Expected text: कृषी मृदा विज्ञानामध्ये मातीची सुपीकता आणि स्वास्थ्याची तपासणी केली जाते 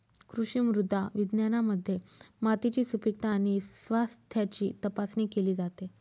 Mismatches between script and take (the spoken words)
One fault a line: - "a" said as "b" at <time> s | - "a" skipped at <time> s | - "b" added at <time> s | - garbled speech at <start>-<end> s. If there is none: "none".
none